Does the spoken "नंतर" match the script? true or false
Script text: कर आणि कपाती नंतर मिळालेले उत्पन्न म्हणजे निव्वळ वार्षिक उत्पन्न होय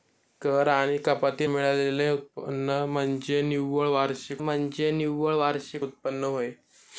false